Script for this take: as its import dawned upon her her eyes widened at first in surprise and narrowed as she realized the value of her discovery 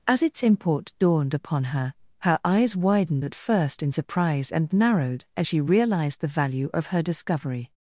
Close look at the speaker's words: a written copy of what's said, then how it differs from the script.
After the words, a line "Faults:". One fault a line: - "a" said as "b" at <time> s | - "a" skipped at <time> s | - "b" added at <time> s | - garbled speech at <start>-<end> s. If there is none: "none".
as its import dawned upon her her eyes widened at first in surprise and narrowed as she realized the value of her discovery
Faults:
none